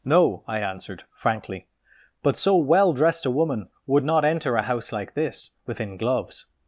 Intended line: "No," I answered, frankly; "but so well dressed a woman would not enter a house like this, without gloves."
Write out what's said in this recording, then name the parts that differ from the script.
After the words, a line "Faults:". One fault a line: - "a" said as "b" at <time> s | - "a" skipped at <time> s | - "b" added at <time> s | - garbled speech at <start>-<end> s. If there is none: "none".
"No," I answered, frankly; "but so well dressed a woman would not enter a house like this, within gloves."
Faults:
- "without" said as "within" at 5.7 s